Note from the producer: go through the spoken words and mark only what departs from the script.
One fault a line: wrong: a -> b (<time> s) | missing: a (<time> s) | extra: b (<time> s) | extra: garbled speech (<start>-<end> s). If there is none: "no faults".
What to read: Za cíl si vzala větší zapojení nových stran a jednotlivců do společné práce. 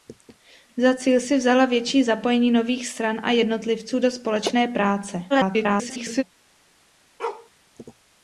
extra: garbled speech (5.3-6.2 s)